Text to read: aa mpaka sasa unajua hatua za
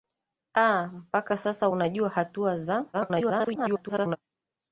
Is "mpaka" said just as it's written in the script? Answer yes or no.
yes